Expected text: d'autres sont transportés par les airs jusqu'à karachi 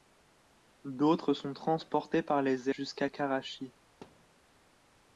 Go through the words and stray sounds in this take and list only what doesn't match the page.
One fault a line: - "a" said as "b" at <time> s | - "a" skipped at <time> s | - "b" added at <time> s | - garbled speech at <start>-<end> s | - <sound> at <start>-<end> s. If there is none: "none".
- "airs" skipped at 2.7 s
- thud at 4.0-4.4 s